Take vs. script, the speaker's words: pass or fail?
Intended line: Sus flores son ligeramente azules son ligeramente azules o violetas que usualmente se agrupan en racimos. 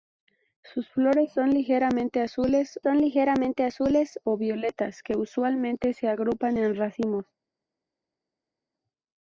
pass